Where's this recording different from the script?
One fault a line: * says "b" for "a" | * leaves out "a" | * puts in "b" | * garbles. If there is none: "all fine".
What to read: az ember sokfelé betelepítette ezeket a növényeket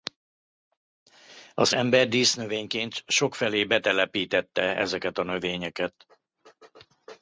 * puts in "dísznövényként"